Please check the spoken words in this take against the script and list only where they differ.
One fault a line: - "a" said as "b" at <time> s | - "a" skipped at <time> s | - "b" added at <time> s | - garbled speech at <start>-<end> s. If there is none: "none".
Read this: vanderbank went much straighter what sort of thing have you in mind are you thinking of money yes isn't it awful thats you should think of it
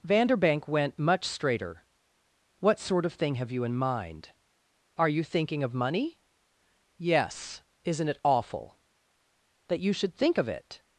- "thats" said as "that" at 9.7 s